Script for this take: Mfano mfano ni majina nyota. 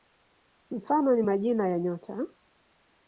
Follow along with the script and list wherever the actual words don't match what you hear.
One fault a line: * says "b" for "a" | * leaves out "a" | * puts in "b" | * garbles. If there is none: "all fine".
* leaves out "mfano"
* puts in "ya"